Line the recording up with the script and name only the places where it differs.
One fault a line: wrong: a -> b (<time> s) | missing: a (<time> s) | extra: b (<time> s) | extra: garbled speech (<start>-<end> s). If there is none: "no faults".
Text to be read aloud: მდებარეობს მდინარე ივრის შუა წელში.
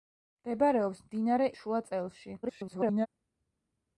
missing: ივრის (1.5 s)
extra: garbled speech (2.4-3.1 s)